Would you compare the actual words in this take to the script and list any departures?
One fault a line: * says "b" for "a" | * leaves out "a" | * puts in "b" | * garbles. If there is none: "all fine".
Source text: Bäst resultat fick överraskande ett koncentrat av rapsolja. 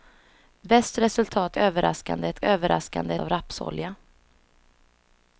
* leaves out "fick"
* says "överraskande" for "koncentrat"